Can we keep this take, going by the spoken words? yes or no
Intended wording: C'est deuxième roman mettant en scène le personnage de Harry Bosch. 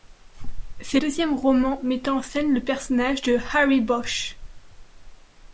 yes